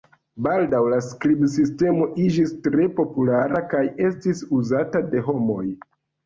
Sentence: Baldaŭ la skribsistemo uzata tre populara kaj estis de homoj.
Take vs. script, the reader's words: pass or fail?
fail